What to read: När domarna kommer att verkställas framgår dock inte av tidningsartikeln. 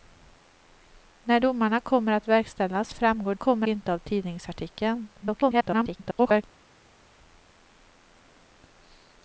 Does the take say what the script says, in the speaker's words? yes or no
no